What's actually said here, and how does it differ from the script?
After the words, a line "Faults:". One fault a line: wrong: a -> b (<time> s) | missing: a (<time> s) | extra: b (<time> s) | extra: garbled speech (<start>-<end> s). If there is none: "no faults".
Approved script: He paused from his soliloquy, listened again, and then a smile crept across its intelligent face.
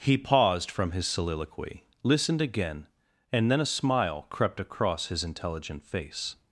He paused from his soliloquy, listened again, and then a smile crept across his intelligent face.
Faults:
wrong: its -> his (5.1 s)